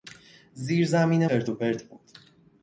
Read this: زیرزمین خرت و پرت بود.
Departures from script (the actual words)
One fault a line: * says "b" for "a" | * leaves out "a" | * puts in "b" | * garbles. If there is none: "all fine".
all fine